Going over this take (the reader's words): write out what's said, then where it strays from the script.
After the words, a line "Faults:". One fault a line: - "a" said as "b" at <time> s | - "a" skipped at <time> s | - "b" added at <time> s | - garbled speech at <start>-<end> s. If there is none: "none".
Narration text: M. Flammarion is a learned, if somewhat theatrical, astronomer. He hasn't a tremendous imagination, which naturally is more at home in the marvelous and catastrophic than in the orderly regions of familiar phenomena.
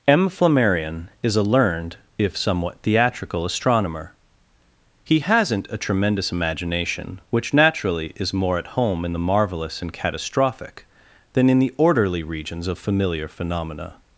M. Flammarion is a learned, if somewhat theatrical, astronomer. He hasn't a tremendous imagination, which naturally is more at home in the marvelous and catastrophic than in the orderly regions of familiar phenomena.
Faults:
none